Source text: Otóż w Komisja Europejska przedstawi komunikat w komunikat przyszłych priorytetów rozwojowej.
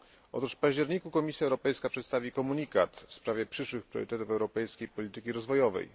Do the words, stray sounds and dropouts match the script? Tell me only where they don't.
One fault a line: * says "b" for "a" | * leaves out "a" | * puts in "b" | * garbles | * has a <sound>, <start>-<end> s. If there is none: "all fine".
* puts in "październiku"
* says "sprawie" for "komunikat"
* puts in "europejskiej polityki"